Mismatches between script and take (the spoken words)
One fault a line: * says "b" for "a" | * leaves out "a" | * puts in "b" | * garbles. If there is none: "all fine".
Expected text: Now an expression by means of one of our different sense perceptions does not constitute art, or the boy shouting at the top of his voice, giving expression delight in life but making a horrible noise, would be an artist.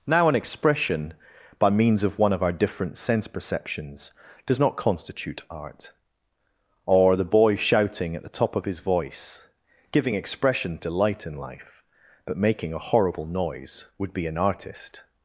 all fine